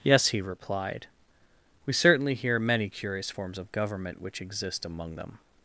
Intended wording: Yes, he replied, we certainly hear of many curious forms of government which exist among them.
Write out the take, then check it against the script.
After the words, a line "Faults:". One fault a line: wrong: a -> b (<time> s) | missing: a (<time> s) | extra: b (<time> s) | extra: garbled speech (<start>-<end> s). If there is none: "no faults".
Yes, he replied, we certainly hear many curious forms of government which exist among them.
Faults:
missing: of (2.6 s)